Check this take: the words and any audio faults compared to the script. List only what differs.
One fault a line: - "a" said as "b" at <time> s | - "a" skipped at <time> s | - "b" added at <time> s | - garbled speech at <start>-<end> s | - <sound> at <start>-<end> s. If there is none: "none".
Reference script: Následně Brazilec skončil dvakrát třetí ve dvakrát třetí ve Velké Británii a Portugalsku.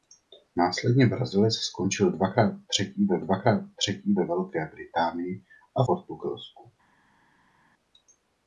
none